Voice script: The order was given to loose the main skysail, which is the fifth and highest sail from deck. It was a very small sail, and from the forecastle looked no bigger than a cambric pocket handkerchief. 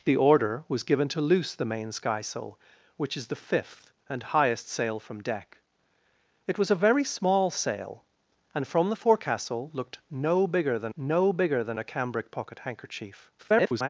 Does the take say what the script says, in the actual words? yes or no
no